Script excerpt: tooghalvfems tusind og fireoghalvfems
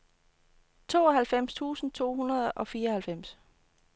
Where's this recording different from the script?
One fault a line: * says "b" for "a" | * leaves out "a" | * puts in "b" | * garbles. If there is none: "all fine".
* puts in "to hundrede"